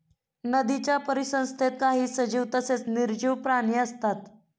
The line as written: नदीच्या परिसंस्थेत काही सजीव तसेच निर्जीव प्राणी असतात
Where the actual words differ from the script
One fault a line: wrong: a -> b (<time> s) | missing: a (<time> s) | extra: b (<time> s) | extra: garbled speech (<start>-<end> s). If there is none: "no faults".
no faults